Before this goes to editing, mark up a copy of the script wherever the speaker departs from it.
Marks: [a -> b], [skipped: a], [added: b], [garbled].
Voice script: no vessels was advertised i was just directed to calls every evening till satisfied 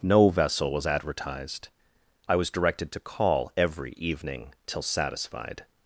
no [vessels -> vessel] was advertised i was [skipped: just] directed to [calls -> call] every evening till satisfied